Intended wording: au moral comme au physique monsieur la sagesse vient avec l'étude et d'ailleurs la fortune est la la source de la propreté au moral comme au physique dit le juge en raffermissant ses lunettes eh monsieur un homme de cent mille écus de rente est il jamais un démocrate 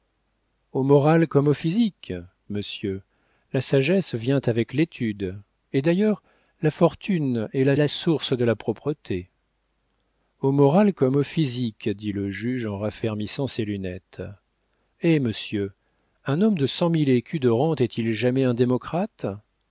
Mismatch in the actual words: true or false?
false